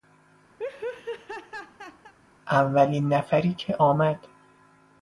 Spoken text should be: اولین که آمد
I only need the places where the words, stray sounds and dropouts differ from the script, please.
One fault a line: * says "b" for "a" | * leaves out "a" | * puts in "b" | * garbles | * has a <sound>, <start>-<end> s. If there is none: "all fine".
* has a laugh, 0.6-2.1 s
* puts in "نفری"